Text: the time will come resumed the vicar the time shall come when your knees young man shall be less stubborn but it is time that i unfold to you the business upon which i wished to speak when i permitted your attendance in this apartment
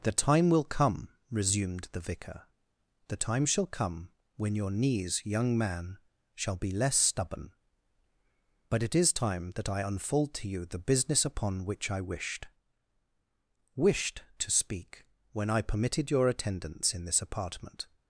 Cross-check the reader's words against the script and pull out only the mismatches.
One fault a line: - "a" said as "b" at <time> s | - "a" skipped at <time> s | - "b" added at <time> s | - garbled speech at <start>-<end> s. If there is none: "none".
- "wished" added at 13.8 s